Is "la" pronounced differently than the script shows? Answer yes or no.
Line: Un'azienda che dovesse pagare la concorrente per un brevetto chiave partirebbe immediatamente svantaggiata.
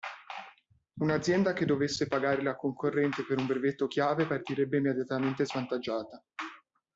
no